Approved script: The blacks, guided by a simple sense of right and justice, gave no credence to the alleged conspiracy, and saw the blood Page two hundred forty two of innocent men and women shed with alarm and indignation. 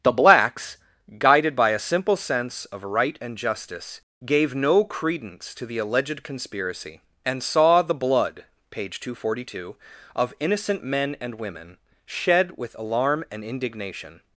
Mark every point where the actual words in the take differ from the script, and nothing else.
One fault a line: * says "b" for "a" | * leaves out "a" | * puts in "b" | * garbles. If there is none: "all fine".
all fine